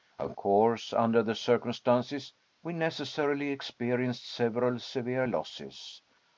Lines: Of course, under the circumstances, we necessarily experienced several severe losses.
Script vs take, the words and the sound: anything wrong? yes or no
no